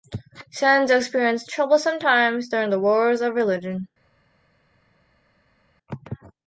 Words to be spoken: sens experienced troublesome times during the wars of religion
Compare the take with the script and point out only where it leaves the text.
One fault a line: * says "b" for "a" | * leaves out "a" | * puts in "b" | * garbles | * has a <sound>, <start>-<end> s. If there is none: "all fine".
all fine